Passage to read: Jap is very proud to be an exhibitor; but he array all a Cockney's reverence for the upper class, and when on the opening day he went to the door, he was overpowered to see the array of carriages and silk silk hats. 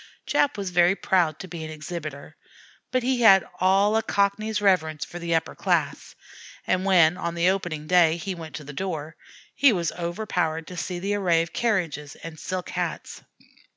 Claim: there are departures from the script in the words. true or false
true